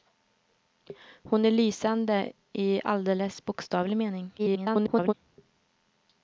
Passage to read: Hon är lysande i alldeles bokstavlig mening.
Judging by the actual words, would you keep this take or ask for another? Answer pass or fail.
fail